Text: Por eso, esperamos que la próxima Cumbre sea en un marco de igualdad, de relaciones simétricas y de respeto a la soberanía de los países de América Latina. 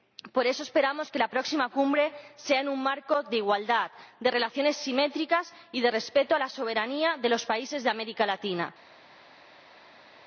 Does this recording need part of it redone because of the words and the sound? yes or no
no